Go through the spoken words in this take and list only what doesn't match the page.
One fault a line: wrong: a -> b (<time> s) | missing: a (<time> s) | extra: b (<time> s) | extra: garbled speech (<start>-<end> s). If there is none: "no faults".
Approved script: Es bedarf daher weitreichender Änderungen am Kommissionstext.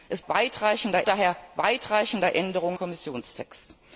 wrong: bedarf -> weitreichender (0.3 s)
missing: am (2.8 s)